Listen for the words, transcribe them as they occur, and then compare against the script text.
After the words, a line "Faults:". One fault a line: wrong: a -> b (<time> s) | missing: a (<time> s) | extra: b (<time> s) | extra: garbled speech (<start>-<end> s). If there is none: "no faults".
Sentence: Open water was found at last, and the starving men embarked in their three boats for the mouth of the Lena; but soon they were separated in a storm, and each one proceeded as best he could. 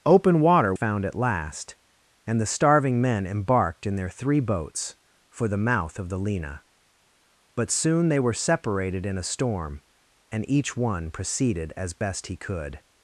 Open water found at last, and the starving men embarked in their three boats for the mouth of the Lena; but soon they were separated in a storm, and each one proceeded as best he could.
Faults:
missing: was (0.7 s)